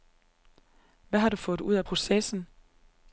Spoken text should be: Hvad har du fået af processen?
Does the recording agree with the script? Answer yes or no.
no